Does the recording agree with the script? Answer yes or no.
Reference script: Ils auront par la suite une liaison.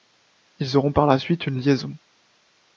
yes